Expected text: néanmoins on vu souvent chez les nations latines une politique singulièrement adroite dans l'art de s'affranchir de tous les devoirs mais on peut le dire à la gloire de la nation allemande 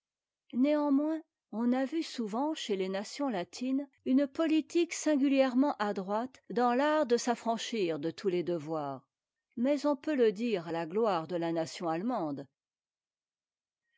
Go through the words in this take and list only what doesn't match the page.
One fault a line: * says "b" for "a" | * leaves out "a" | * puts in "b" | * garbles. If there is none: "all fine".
* puts in "a"